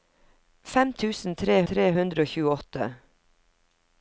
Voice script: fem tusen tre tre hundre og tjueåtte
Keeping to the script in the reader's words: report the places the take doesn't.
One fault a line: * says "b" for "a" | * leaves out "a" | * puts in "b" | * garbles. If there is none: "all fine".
all fine